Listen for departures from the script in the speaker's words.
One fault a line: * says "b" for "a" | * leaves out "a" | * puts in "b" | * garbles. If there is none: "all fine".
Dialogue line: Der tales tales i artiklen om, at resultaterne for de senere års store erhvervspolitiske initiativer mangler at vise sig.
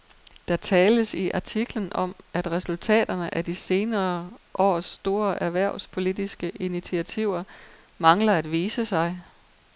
* leaves out "tales"
* says "af" for "for"